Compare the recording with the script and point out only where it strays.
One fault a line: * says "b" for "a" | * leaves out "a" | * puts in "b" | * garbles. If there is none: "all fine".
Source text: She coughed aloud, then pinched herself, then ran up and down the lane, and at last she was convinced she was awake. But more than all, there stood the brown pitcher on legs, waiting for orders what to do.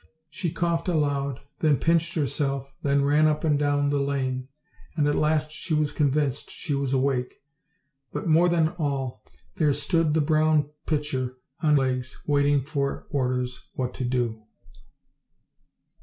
all fine